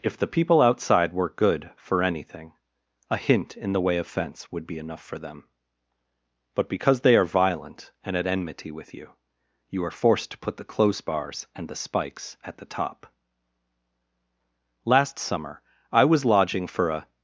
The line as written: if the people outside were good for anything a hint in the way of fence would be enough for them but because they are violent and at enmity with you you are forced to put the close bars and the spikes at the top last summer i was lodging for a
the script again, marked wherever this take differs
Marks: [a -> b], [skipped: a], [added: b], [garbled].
if the people outside were good for anything a hint in the way of fence would be enough for them but because they are violent and at enmity with you you are forced to put the close bars and the spikes at the top last summer i was lodging for a